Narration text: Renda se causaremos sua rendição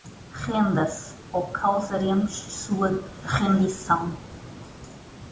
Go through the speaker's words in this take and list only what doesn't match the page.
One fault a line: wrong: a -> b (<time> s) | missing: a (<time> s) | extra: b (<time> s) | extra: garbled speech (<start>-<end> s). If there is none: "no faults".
extra: ou (1.3 s)